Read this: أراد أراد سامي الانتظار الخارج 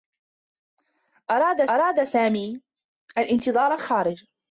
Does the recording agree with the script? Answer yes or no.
yes